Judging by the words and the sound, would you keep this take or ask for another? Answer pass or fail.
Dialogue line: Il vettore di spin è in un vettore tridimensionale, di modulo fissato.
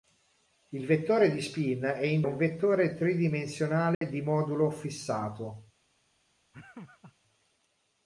fail